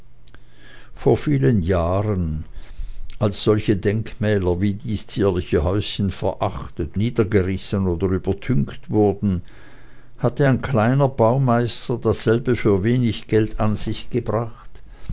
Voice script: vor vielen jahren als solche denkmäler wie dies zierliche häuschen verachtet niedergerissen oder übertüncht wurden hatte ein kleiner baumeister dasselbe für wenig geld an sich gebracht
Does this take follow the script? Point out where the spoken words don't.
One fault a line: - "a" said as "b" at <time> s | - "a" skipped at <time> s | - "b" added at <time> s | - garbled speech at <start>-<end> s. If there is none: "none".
none